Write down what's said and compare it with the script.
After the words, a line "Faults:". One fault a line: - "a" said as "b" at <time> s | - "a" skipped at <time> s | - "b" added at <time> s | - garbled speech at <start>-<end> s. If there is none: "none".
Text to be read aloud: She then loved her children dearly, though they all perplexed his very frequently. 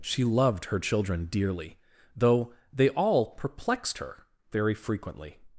She loved her children dearly, though they all perplexed her very frequently.
Faults:
- "then" skipped at 0.2 s
- "his" said as "her" at 4.0 s